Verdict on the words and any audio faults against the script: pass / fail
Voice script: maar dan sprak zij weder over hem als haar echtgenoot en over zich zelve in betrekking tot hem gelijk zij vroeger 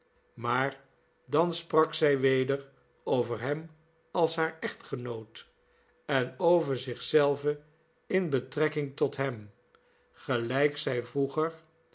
pass